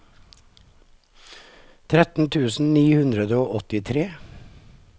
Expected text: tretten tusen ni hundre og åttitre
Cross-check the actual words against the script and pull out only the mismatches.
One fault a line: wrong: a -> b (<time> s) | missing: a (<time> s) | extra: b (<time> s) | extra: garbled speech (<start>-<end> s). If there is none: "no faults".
no faults